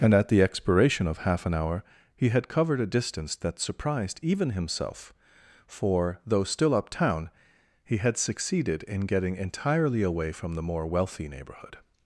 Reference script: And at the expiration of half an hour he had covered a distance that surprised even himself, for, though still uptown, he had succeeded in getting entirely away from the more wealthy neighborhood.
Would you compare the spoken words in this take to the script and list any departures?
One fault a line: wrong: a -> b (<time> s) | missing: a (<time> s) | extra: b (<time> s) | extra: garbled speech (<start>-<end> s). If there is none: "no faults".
no faults